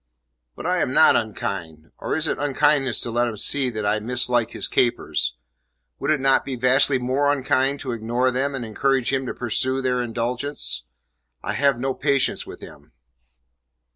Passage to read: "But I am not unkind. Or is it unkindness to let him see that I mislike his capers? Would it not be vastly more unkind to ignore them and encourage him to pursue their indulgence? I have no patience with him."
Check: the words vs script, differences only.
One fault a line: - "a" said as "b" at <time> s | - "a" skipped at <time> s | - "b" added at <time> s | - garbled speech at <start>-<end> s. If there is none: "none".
none